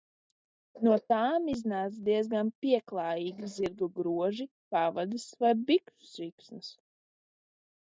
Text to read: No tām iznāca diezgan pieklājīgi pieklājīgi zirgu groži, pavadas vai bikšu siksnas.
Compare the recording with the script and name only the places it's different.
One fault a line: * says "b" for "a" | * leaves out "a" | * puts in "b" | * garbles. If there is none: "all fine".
* leaves out "pieklājīgi"